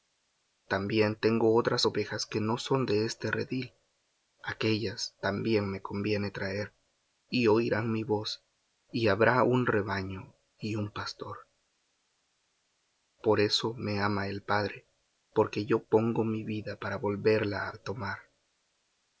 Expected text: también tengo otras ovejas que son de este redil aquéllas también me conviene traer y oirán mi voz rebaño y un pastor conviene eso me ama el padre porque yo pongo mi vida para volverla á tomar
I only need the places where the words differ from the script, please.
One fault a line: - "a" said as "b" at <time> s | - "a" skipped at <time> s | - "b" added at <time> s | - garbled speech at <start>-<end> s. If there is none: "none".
- "no" added at 2.4 s
- "y habrá un" added at 8.9 s
- "conviene" said as "por" at 13.2 s